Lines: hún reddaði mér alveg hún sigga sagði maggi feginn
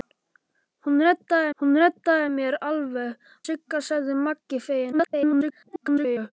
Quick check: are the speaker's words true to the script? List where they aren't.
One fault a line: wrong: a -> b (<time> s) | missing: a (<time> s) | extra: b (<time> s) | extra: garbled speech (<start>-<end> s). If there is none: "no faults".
extra: hún reddaði (1.6 s)
missing: hún (3.3 s)
extra: garbled speech (4.9-6.3 s)